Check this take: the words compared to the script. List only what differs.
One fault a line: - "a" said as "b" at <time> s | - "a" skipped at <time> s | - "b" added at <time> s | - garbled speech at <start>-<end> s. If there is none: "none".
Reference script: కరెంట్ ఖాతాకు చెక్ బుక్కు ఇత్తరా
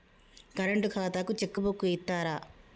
none